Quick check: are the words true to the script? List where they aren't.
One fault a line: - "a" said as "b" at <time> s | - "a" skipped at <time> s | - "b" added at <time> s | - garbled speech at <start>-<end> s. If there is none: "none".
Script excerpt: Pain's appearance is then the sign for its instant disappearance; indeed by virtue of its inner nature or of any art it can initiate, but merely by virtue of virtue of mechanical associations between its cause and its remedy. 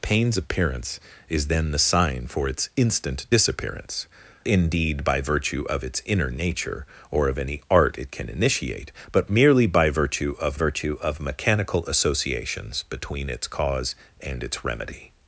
none